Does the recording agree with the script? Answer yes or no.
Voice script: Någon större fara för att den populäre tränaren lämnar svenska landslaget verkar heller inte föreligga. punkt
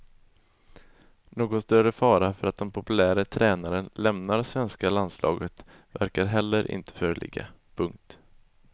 yes